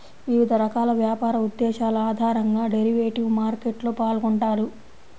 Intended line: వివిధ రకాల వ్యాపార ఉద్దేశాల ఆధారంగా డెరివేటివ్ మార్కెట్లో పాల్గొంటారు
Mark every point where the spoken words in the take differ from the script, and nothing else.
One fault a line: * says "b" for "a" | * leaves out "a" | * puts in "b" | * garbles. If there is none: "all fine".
all fine